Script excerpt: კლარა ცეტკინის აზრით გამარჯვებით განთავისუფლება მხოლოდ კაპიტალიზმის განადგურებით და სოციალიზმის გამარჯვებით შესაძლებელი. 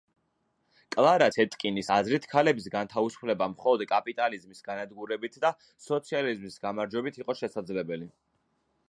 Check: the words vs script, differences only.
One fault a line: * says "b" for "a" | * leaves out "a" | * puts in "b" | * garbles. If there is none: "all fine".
* says "ქალების" for "გამარჯვებით"
* puts in "იყო"